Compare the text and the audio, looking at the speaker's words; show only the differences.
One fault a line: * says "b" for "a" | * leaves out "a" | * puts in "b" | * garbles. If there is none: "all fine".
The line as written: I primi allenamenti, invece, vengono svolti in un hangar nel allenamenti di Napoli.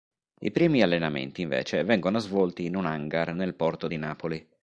* says "porto" for "allenamenti"